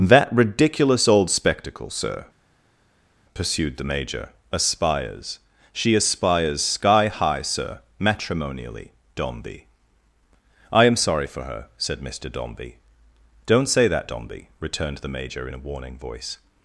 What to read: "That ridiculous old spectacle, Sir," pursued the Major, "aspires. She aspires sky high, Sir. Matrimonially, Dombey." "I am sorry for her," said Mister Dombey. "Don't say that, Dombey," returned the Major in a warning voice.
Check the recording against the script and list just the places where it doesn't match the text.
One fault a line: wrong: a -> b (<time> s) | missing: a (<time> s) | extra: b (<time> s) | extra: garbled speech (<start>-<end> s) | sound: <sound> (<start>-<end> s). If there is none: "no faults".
no faults